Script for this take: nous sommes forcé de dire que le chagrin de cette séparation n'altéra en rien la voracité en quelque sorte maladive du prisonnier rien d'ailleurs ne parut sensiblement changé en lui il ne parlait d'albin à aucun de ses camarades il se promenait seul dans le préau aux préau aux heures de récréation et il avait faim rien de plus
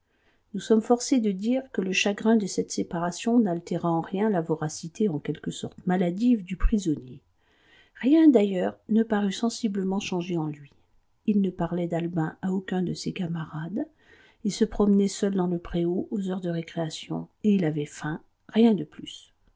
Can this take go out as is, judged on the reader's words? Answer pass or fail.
fail